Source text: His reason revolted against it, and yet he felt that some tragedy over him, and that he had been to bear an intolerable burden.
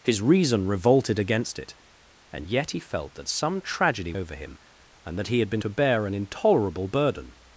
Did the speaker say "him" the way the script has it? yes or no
yes